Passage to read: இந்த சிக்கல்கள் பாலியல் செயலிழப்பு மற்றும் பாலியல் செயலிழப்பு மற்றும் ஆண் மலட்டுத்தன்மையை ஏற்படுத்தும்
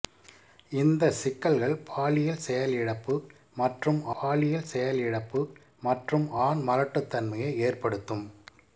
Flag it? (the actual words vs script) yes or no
no